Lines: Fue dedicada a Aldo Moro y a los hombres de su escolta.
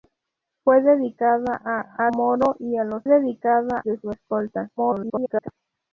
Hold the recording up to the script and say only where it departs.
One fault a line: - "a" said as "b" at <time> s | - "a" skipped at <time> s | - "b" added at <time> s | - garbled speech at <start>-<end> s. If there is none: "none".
- "Aldo" skipped at 2.1 s
- "hombres" said as "dedicada" at 3.0 s
- garbled speech at 4.8-5.5 s